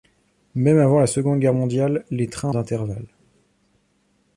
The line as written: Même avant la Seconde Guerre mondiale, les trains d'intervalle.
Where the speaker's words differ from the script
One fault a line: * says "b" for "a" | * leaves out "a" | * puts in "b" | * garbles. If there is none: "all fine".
all fine